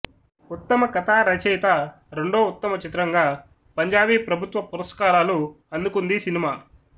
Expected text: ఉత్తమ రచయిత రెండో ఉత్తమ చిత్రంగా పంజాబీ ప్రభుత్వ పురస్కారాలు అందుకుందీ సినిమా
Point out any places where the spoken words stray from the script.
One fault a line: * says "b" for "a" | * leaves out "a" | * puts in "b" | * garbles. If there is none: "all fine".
* puts in "కథా"